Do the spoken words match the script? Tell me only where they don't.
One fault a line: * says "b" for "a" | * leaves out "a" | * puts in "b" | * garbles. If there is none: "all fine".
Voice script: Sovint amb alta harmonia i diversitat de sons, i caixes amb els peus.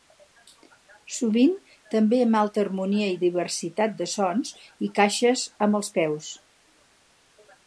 * puts in "també"